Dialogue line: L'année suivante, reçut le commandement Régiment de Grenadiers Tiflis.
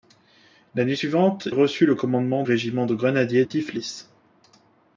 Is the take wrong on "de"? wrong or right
right